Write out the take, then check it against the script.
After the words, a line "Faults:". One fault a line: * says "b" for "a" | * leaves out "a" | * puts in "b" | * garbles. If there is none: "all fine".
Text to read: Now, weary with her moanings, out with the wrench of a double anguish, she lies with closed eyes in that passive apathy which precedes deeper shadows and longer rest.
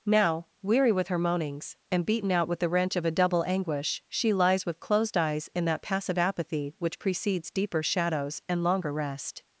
Now, weary with her moanings, and beaten out with the wrench of a double anguish, she lies with closed eyes in that passive apathy which precedes deeper shadows and longer rest.
Faults:
* puts in "and beaten"